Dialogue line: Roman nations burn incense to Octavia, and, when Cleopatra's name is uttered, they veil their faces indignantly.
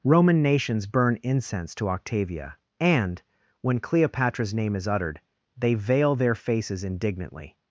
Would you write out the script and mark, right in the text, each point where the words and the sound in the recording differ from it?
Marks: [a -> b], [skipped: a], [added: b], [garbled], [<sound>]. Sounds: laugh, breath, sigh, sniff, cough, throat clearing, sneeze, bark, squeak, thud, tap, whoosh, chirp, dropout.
Roman nations burn incense to Octavia, and, when Cleopatra's name is uttered, they veil their faces indignantly.